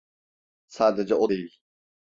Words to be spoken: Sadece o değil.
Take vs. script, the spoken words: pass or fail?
pass